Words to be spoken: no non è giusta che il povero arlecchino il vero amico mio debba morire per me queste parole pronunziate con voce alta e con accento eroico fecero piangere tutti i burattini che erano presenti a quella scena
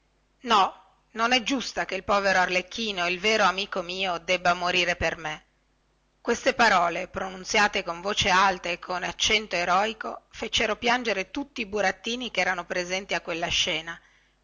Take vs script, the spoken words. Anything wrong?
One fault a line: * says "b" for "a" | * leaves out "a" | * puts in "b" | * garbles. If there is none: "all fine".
all fine